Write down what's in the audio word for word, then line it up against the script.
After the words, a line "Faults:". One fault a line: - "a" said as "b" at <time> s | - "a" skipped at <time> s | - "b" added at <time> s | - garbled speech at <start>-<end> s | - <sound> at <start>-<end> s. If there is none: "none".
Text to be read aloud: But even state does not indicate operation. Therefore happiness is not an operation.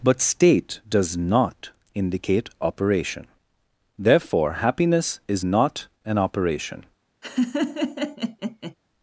But state does not indicate operation. Therefore happiness is not an operation.
Faults:
- "even" skipped at 0.2 s
- laugh at 7.2-8.7 s